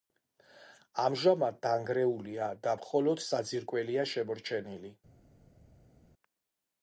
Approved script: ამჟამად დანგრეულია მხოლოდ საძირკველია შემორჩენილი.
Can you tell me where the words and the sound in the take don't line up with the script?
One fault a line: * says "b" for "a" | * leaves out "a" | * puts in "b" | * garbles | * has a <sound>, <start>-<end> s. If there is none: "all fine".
* puts in "და"